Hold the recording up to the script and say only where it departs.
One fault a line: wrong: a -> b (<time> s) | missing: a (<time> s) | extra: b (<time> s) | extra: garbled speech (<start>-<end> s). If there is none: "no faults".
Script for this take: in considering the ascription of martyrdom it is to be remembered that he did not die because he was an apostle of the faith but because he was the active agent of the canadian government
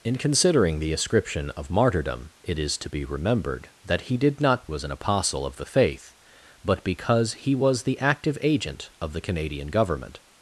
missing: die because he (4.7 s)